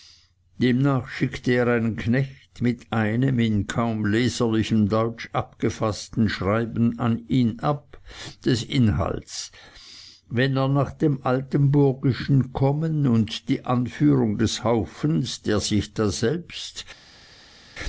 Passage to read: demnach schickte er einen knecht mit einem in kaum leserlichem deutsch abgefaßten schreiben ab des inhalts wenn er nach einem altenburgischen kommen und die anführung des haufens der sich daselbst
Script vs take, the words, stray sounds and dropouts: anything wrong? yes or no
yes